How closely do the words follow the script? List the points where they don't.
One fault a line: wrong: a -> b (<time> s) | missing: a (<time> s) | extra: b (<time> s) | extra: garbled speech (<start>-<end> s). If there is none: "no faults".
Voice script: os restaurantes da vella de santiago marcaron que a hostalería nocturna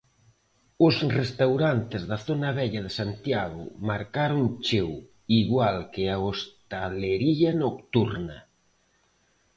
extra: zona (2.3 s)
extra: cheo igual (4.7 s)